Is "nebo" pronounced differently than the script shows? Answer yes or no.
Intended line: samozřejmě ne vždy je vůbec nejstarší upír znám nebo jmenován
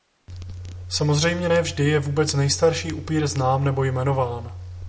no